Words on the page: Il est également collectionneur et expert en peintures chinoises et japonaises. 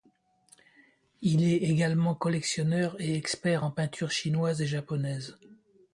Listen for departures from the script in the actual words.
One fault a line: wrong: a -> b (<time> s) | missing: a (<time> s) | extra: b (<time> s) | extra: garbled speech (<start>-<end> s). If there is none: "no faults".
no faults